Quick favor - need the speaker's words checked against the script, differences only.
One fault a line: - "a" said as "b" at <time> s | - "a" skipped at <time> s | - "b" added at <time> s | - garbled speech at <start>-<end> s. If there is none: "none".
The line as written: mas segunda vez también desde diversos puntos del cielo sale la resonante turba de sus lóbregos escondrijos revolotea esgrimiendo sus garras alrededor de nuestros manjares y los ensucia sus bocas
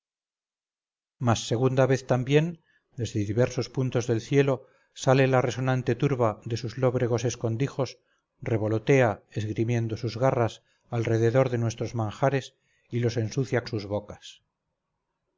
none